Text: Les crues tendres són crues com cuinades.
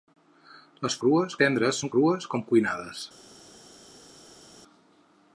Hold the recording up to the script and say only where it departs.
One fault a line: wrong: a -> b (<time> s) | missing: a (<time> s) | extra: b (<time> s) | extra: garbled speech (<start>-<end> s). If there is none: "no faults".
no faults